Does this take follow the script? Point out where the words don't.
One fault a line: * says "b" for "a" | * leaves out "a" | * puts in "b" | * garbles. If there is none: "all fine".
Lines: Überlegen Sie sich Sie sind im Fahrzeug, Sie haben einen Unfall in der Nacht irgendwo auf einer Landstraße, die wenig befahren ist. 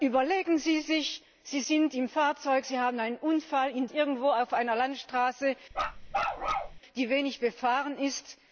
* leaves out "der Nacht"